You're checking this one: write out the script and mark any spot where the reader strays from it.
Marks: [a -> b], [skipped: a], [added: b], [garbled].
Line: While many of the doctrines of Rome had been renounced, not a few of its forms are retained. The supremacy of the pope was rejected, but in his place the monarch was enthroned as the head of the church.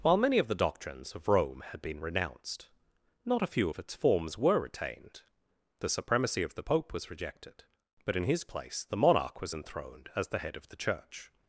While many of the doctrines of Rome had been renounced, not a few of its forms [are -> were] retained. The supremacy of the pope was rejected, but in his place the monarch was enthroned as the head of the church.